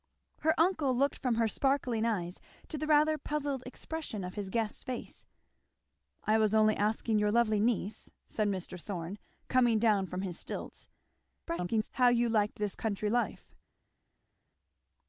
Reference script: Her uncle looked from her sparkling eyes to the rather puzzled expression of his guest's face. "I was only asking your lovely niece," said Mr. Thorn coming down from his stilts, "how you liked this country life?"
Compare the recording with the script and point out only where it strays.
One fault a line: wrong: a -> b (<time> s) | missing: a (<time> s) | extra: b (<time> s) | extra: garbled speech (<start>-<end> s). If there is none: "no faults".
extra: garbled speech (11.5-11.9 s)